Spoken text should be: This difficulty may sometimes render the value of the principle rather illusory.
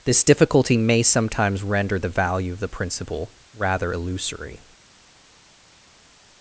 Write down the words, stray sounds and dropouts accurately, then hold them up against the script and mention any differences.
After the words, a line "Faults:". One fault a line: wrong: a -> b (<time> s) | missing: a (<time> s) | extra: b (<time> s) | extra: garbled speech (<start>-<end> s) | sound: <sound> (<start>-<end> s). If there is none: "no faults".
This difficulty may sometimes render the value of the principle rather illusory.
Faults:
no faults